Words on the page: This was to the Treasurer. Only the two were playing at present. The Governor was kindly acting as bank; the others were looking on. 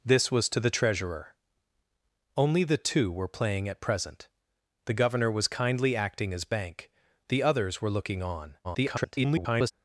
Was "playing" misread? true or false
false